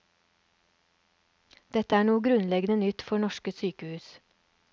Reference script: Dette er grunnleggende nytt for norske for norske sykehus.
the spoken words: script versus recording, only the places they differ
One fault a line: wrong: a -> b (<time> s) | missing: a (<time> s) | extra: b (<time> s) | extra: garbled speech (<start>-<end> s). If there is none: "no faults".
extra: noe (2.1 s)
missing: for norske (3.5 s)